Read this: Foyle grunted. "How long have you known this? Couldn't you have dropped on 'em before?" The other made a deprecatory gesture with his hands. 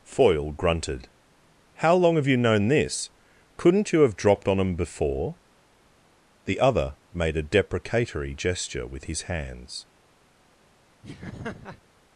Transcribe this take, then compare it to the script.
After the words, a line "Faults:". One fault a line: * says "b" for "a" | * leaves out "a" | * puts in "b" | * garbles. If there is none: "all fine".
Foyle grunted. "How long have you known this? Couldn't you have dropped on 'em before?" The other made a deprecatory gesture with his hands.
Faults:
all fine